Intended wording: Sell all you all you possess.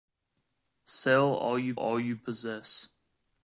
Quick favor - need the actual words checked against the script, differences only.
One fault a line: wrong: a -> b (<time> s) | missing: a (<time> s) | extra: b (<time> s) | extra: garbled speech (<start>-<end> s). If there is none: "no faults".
no faults